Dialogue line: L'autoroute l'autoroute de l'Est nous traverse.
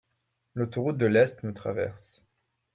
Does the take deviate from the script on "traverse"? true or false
false